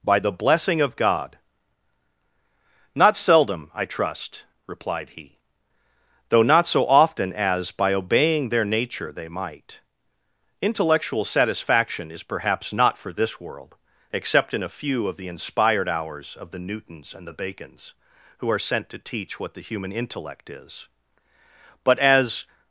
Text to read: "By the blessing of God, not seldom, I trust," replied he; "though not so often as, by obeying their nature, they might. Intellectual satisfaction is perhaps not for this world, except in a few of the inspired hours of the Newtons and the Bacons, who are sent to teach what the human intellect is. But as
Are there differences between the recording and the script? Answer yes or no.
no